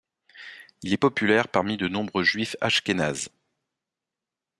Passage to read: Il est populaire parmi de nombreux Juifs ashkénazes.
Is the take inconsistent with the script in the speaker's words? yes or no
no